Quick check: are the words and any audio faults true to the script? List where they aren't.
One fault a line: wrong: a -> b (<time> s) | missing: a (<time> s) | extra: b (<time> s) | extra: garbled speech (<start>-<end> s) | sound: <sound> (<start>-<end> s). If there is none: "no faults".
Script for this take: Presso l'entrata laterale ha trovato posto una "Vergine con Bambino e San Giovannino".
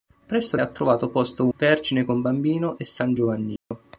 missing: l'entrata laterale (0.6 s)
missing: una (1.5 s)
sound: dropout (3.6-3.7 s)